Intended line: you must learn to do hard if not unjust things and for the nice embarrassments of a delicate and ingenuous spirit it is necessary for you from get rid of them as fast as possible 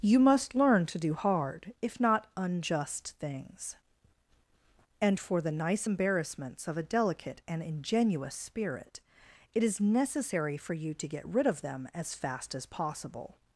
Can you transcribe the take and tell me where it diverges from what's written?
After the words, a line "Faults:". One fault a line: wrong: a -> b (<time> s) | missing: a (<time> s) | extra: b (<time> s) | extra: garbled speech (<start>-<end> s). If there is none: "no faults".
you must learn to do hard if not unjust things and for the nice embarrassments of a delicate and ingenuous spirit it is necessary for you to get rid of them as fast as possible
Faults:
wrong: from -> to (10.9 s)